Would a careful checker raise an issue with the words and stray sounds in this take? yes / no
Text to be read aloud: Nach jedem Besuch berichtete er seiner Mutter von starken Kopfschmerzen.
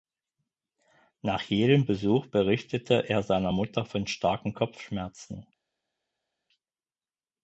no